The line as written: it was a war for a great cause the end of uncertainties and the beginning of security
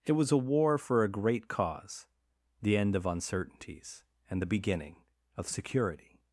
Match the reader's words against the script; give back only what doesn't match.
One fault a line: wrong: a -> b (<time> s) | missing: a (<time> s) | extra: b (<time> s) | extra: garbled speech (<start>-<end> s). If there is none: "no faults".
no faults